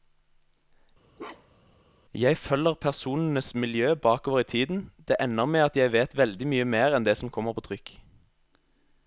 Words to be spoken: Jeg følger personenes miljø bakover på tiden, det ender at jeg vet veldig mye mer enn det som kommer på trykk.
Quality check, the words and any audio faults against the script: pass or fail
fail